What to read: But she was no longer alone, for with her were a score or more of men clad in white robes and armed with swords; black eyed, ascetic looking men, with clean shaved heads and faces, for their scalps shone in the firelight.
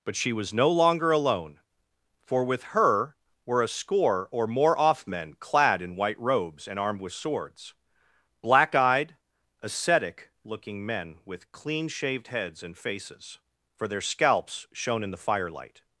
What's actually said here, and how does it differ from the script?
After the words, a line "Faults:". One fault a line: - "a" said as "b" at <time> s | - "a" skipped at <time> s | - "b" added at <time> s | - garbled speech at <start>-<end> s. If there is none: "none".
But she was no longer alone, for with her were a score or more off men clad in white robes and armed with swords; black eyed, ascetic looking men, with clean shaved heads and faces, for their scalps shone in the firelight.
Faults:
- "of" said as "off" at 4.8 s